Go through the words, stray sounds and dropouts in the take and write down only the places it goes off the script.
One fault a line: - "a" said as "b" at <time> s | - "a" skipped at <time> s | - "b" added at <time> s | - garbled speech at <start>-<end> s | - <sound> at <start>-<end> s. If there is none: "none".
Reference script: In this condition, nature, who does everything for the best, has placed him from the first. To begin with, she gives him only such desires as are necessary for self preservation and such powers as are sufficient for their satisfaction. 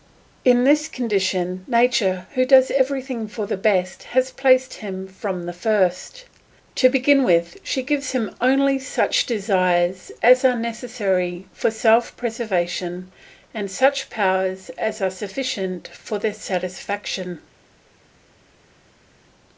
none